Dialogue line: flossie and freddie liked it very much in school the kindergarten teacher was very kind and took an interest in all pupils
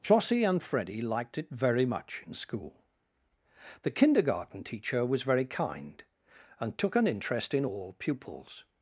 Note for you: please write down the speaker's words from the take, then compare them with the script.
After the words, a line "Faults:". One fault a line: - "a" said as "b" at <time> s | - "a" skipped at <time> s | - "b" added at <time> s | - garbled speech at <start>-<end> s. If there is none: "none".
flossie and freddie liked it very much in school the kindergarten teacher was very kind and took an interest in all pupils
Faults:
none